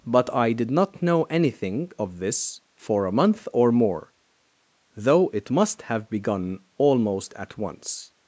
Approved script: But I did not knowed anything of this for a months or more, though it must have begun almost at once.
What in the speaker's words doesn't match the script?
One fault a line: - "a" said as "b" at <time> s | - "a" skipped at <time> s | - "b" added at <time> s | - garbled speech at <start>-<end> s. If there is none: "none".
- "knowed" said as "know" at 1.0 s
- "months" said as "month" at 3.1 s